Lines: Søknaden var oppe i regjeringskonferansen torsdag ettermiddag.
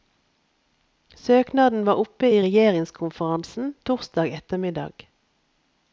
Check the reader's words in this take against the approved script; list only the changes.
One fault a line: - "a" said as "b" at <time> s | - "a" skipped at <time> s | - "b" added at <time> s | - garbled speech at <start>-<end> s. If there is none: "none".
none